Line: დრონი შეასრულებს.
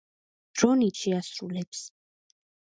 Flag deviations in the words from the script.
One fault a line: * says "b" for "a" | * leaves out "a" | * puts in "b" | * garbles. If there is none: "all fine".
all fine